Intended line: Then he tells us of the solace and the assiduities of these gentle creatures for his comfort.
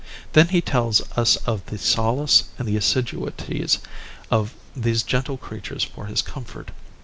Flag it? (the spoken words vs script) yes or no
no